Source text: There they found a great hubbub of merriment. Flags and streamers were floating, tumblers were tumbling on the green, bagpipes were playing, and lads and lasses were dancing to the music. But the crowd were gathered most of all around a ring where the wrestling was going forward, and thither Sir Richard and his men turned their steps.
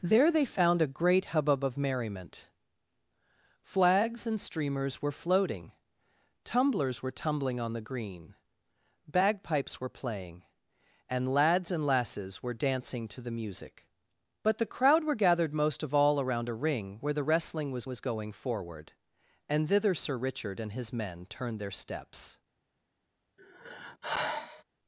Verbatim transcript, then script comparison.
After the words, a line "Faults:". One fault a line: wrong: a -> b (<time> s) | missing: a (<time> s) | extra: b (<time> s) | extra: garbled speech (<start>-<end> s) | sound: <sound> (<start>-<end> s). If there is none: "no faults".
There they found a great hubbub of merriment. Flags and streamers were floating, tumblers were tumbling on the green, bagpipes were playing, and lads and lasses were dancing to the music. But the crowd were gathered most of all around a ring where the wrestling was was going forward, and thither Sir Richard and his men turned their steps.
Faults:
extra: was (17.9 s)
sound: sigh (23.4-24.6 s)